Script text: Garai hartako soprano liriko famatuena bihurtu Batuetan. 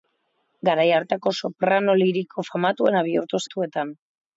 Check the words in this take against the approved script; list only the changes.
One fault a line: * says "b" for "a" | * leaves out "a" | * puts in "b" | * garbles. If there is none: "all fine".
all fine